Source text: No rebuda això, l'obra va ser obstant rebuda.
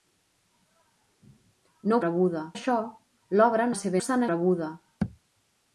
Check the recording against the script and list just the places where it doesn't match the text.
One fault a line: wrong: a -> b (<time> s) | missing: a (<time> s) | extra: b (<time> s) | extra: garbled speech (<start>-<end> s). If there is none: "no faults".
no faults